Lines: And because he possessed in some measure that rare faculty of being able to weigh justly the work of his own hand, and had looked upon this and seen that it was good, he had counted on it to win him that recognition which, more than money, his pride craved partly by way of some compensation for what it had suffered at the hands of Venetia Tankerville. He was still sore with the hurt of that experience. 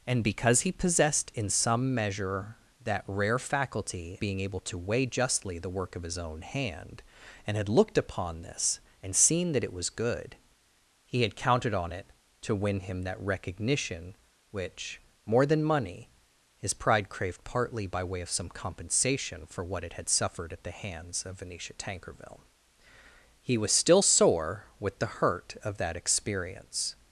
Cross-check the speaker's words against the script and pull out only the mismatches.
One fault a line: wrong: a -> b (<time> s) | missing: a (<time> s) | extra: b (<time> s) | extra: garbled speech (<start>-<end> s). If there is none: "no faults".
missing: of (4.2 s)